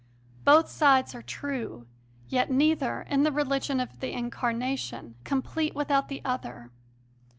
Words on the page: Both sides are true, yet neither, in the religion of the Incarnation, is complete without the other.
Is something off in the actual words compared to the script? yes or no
yes